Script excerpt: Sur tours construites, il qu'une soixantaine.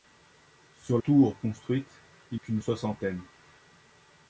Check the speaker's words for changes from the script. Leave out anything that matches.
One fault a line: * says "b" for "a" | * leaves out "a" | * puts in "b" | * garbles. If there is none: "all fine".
all fine